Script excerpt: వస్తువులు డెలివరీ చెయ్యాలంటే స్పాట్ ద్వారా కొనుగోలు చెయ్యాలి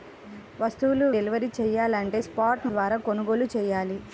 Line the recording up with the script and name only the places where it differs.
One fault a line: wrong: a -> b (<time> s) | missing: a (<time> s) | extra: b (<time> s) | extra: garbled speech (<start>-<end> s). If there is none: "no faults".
no faults